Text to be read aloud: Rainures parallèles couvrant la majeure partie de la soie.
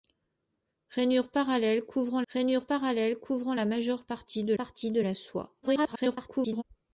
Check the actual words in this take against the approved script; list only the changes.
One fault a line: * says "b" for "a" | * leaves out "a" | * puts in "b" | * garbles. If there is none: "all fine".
* puts in "rainures parallèles couvrant"
* puts in "partie de"
* garbles